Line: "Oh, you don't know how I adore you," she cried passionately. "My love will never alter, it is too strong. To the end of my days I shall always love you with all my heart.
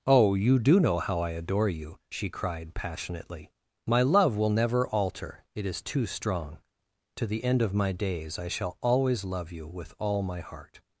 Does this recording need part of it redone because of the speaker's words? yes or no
yes